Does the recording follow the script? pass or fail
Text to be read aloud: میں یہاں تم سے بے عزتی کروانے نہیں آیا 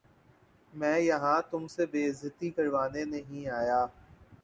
pass